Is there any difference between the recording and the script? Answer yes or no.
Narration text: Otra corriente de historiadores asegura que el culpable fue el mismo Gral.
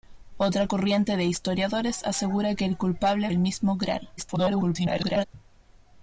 yes